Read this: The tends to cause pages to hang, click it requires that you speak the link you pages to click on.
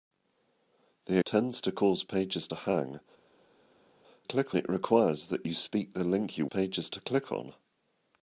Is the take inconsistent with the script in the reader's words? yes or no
no